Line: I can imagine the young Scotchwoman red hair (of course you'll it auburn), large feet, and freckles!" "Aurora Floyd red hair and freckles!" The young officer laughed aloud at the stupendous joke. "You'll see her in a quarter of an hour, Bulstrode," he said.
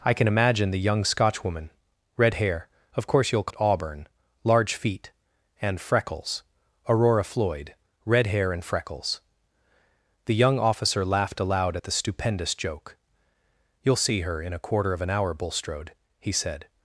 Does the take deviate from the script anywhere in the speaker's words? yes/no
no